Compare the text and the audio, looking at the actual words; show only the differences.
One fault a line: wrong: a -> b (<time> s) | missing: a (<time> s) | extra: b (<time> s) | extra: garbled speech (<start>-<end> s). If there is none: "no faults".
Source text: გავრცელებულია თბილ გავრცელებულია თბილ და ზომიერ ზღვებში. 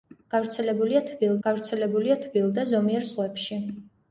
no faults